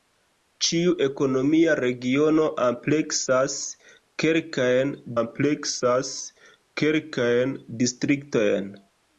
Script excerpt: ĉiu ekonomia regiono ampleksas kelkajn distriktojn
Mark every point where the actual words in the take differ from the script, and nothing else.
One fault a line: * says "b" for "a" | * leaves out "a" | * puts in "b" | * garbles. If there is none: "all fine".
* puts in "ampleksas kelkajn"